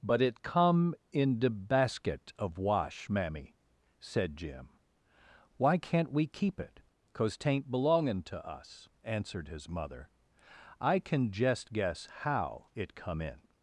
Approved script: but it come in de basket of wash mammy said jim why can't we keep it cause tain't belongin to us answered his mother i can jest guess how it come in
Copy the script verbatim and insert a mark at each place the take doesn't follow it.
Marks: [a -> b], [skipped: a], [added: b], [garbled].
but it come in de basket of wash mammy said jim why can't we keep it cause tain't belongin to us answered his mother i can jest guess how it come in